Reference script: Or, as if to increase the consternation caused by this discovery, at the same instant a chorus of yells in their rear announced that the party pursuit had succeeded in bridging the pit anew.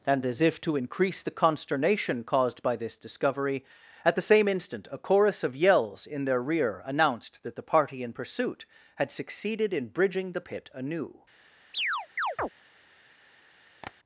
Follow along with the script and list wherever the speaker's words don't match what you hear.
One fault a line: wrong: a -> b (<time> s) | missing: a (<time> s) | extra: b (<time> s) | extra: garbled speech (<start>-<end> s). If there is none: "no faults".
wrong: Or -> And (0.1 s)
extra: in (8.0 s)